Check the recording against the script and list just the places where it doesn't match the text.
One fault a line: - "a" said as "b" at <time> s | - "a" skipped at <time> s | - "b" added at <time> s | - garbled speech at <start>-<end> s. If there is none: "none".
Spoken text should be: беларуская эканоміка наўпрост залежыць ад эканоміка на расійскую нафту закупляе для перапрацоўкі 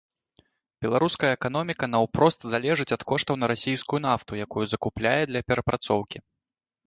- "эканоміка" said as "коштаў" at 3.1 s
- "якую" added at 4.5 s